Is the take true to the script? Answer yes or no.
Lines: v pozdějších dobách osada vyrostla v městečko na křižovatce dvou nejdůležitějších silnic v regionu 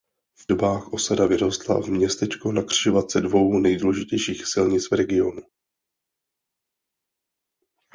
no